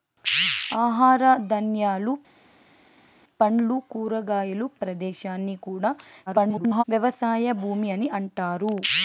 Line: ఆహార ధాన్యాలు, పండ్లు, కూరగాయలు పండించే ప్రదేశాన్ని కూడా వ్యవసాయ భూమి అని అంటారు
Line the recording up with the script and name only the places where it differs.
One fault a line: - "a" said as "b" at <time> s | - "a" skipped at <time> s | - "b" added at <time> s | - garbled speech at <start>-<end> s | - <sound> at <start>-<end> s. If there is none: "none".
- "పండించే" skipped at 4.7 s
- garbled speech at 6.3-6.8 s